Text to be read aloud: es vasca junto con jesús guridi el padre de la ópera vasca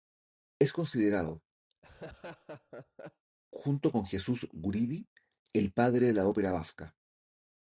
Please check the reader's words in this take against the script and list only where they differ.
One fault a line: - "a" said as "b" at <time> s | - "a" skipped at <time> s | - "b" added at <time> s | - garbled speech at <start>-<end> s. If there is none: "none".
- "vasca" said as "considerado" at 0.7 s